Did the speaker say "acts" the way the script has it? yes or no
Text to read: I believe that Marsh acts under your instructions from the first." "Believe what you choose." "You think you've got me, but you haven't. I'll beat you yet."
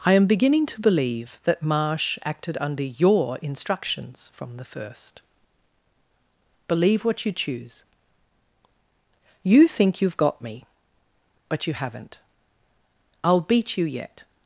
no